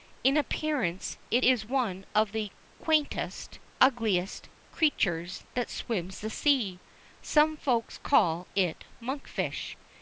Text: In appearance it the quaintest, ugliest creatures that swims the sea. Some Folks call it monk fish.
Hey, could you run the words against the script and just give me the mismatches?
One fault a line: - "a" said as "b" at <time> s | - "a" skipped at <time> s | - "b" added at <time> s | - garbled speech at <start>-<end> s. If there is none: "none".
- "is one of" added at 1.4 s